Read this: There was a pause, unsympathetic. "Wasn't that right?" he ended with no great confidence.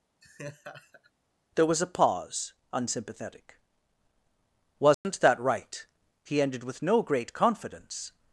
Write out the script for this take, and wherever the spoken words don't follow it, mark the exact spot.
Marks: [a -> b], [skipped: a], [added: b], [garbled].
There was a pause, unsympathetic. "Wasn't that right?" he ended with no great confidence.